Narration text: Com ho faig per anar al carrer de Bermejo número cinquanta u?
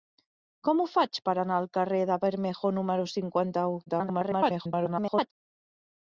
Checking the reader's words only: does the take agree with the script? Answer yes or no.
no